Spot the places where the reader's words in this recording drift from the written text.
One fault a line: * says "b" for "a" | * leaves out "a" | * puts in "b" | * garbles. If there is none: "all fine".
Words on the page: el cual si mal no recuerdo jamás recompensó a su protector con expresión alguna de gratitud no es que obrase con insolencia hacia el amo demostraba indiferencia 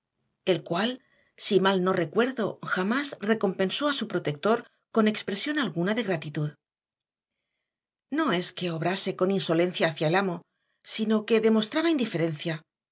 * puts in "sino que"